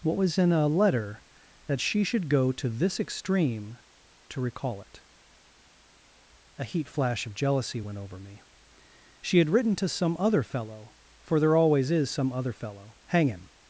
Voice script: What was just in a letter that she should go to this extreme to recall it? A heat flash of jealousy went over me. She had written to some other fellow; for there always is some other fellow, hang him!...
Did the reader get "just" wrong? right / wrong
wrong